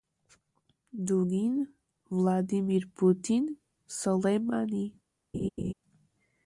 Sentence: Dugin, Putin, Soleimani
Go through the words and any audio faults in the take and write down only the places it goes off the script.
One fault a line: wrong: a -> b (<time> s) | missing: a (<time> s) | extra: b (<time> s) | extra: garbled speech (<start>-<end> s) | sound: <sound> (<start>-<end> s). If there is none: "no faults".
extra: Vladimir (2.1 s)
sound: laugh (5.3-5.7 s)